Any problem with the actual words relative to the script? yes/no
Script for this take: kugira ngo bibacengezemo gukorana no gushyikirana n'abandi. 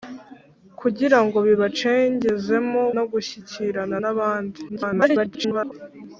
yes